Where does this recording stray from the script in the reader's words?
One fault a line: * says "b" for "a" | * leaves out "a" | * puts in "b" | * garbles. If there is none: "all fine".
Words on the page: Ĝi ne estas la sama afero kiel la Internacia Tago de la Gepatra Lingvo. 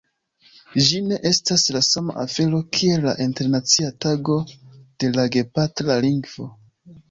all fine